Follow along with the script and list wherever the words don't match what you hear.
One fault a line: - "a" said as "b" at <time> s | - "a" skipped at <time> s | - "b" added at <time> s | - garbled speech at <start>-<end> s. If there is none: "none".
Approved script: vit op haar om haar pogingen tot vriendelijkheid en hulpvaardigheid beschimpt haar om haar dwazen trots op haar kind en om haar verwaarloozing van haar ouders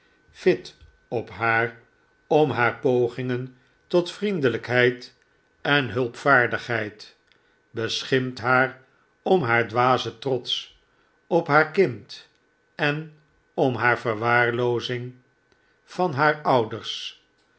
none